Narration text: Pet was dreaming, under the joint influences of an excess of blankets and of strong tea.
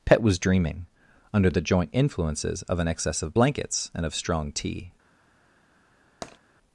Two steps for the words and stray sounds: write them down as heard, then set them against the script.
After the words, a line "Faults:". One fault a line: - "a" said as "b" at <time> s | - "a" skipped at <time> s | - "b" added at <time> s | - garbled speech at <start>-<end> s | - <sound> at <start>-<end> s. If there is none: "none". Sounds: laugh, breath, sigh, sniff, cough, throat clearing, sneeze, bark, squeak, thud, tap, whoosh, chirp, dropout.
Pet was dreaming, under the joint influences of an excess of blankets and of strong tea.
Faults:
- tap at 6.2-6.4 s